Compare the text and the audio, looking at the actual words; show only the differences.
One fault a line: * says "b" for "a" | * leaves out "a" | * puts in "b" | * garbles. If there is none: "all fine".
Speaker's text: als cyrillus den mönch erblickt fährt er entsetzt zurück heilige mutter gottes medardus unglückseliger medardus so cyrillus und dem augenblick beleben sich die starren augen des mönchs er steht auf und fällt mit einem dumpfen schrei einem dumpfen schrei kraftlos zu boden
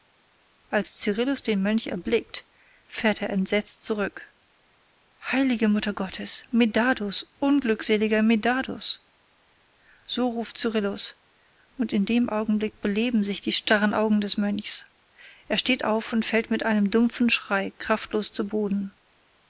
* puts in "ruft"
* puts in "in"
* leaves out "einem dumpfen schrei"